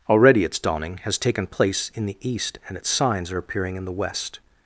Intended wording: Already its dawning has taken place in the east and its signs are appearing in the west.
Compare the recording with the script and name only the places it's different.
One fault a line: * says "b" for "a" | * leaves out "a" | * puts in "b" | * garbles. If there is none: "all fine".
all fine